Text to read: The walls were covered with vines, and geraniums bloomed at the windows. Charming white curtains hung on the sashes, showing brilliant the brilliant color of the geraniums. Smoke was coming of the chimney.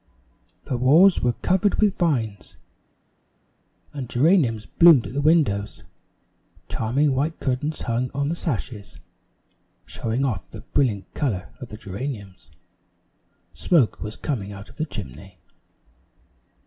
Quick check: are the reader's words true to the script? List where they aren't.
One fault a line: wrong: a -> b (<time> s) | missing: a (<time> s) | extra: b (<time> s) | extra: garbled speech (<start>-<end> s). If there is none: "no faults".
wrong: brilliant -> off (10.2 s)
extra: out (14.5 s)